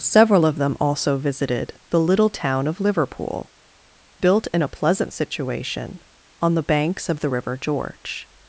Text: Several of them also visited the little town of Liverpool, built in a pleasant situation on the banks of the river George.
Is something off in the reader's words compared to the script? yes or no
no